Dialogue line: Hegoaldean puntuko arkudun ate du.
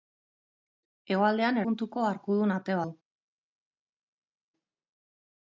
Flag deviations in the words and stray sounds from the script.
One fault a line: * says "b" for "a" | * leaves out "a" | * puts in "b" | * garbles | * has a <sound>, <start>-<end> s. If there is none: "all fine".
all fine